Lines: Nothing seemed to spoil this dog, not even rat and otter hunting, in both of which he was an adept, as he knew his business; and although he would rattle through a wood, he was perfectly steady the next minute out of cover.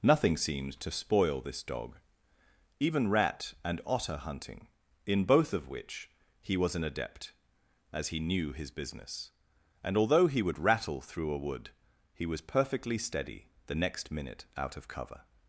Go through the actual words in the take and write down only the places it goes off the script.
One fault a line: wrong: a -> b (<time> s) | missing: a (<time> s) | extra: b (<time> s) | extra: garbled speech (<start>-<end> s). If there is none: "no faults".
missing: not (2.0 s)